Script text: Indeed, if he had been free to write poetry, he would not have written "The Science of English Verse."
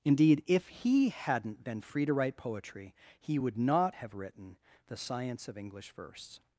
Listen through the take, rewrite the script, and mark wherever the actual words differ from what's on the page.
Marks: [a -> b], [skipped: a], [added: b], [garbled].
Indeed, if he [had -> hadn't] been free to write poetry, he would not have written "The Science of English Verse."